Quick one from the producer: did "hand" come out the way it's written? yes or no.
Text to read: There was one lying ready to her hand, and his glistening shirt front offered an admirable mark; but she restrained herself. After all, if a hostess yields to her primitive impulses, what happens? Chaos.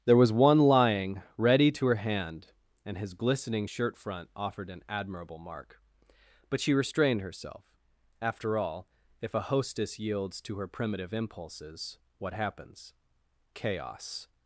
yes